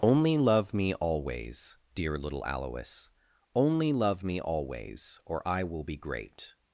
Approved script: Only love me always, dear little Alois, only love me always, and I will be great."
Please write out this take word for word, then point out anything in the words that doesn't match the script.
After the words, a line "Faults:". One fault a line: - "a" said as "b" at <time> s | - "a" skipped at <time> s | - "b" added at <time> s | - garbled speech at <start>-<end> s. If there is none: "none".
Only love me always, dear little Alois, only love me always, or I will be great."
Faults:
- "and" said as "or" at 5.3 s